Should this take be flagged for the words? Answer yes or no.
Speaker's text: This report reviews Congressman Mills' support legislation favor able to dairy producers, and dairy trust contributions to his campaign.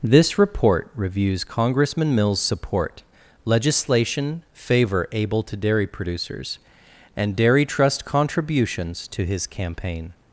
no